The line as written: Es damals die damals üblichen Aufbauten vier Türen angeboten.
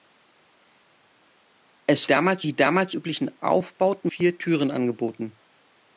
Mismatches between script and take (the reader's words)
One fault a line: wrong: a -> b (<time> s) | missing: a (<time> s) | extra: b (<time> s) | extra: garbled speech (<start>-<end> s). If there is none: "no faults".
no faults